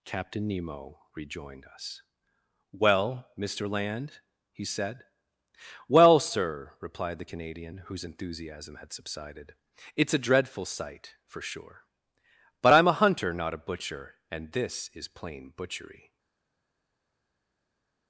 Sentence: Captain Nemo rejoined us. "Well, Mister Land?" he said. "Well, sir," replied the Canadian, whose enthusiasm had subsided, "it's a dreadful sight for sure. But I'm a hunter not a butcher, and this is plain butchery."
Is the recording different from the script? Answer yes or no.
no